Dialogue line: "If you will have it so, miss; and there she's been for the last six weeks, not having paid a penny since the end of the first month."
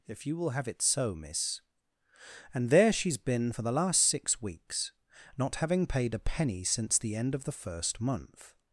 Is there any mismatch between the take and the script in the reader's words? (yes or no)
no